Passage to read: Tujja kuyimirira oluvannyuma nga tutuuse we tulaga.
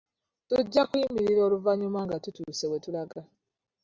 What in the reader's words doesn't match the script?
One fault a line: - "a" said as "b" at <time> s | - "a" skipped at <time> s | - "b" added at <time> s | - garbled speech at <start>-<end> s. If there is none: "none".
none